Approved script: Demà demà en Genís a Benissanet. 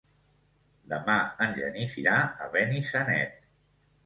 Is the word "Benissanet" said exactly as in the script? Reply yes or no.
yes